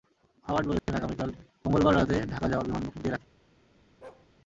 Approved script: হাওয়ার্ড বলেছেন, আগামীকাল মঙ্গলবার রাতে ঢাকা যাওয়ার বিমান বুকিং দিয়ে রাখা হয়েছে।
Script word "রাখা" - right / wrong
wrong